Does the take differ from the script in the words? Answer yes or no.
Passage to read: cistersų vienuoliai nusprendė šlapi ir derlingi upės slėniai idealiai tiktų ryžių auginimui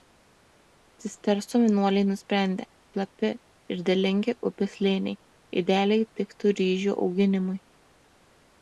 no